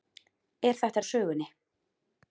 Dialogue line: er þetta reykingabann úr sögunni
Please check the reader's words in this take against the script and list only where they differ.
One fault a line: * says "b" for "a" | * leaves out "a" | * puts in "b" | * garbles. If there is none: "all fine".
* leaves out "reykingabann"